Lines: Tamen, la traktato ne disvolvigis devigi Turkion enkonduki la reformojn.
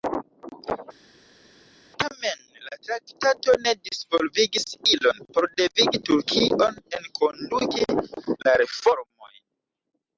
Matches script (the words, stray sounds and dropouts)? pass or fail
fail